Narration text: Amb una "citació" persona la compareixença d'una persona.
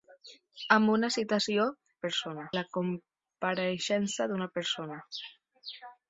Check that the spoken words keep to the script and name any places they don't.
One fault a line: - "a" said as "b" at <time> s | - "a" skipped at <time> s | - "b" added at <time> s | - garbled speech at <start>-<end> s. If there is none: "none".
none